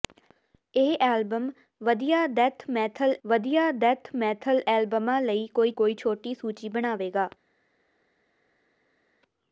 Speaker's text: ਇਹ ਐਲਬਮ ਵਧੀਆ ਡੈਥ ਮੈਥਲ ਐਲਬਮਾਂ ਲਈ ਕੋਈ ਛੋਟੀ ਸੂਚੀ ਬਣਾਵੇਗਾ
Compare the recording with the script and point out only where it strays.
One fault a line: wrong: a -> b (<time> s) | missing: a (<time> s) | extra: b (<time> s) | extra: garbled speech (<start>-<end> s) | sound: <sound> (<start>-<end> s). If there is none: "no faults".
extra: ਵਧੀਆ ਡੈਥ ਮੈਥਲ (3.2 s)
extra: ਕੋਈ (5.8 s)